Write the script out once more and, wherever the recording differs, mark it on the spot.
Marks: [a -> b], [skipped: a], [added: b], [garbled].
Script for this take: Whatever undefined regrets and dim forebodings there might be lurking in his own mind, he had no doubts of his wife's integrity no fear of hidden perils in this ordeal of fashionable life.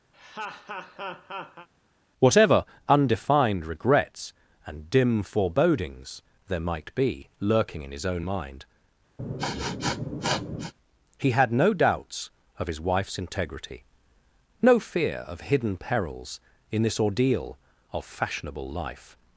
Whatever undefined regrets and dim forebodings there might be lurking in his own mind, he had no doubts of his wife's integrity no fear of hidden perils in this ordeal of fashionable life.